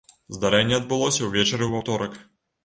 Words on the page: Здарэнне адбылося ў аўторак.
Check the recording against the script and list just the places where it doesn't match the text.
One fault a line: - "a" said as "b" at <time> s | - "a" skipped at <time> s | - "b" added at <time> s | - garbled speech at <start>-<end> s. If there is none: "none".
- "ўвечары" added at 1.3 s